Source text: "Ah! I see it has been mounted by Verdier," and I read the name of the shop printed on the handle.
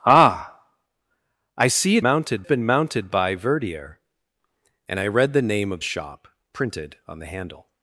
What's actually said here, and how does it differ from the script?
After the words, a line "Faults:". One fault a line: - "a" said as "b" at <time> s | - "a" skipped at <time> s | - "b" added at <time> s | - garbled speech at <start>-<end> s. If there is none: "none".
"Ah! I see it mounted been mounted by Verdier," and I read the name of shop printed on the handle.
Faults:
- "has" said as "mounted" at 2.0 s
- "the" skipped at 5.8 s